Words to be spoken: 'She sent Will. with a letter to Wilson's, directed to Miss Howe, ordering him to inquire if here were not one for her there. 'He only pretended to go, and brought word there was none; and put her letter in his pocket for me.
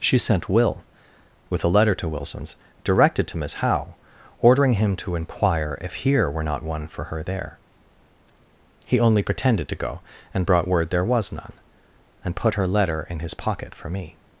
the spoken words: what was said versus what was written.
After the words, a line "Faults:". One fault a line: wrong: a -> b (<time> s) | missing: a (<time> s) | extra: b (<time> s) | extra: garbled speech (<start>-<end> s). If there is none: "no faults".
'She sent Will. with a letter to Wilson's, directed to Miss Howe, ordering him to inquire if here were not one for her there. 'He only pretended to go, and brought word there was none; and put her letter in his pocket for me.
Faults:
no faults